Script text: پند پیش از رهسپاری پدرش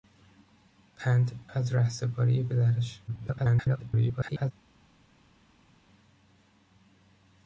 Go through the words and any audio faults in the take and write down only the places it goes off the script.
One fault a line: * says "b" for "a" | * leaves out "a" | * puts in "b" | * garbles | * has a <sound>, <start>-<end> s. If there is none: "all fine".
* leaves out "پیش"
* garbles